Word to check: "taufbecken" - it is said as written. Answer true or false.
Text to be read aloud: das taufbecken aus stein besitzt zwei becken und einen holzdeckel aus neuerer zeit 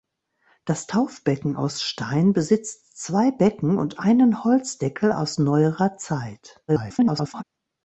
true